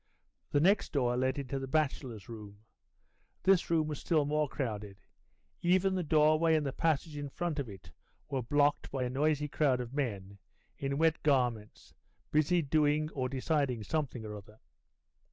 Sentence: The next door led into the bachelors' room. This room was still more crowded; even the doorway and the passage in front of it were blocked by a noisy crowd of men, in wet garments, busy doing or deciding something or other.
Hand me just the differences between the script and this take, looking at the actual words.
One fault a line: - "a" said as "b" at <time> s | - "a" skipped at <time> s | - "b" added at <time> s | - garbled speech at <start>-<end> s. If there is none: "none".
none